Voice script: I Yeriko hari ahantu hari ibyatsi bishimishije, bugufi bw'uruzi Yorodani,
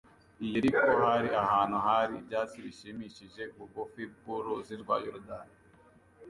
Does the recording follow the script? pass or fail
fail